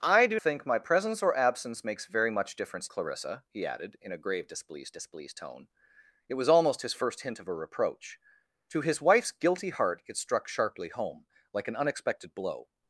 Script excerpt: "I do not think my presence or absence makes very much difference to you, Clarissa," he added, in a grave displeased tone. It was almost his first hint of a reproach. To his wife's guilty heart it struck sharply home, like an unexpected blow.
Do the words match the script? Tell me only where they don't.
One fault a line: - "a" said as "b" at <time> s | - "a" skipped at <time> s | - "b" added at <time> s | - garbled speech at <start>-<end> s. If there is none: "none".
- "not" skipped at 0.4 s
- "to you" skipped at 2.9 s
- "displeased" added at 4.9 s